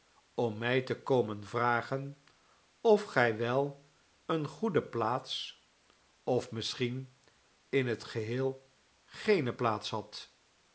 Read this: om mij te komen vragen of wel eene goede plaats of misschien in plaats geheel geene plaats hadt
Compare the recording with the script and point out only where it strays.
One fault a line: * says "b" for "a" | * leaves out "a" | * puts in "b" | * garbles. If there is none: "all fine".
* puts in "gij"
* says "het" for "plaats"